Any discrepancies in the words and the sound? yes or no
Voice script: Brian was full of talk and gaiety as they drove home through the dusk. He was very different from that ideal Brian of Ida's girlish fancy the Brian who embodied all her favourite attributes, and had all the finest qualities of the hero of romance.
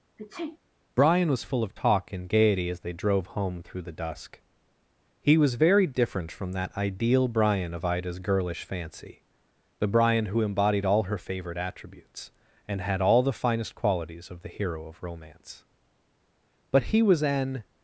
yes